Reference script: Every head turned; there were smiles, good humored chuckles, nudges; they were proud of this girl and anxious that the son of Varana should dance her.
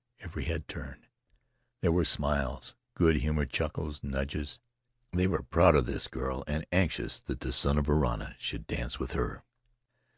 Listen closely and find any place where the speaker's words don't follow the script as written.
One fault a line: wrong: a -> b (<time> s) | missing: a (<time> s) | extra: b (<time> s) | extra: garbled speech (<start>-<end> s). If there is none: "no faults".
extra: with (9.0 s)